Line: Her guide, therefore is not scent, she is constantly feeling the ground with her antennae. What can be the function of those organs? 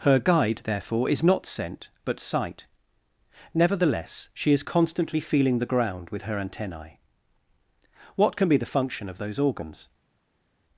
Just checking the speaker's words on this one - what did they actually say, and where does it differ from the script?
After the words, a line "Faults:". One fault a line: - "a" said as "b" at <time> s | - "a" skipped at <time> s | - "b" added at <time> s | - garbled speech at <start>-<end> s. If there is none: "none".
Her guide, therefore is not scent, but sight. Nevertheless, she is constantly feeling the ground with her antennae. What can be the function of those organs?
Faults:
- "but sight Nevertheless" added at 2.0 s